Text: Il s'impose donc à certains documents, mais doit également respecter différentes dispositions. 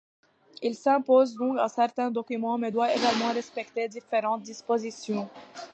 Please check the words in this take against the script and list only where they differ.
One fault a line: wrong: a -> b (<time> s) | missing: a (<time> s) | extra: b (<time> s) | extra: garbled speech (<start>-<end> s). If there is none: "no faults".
no faults